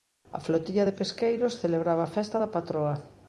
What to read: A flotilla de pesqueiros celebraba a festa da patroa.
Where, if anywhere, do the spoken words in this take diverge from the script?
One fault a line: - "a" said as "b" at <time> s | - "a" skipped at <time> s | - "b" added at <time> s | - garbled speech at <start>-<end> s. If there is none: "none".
none